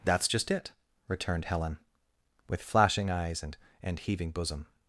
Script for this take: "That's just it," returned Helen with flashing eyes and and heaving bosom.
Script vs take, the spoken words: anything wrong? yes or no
no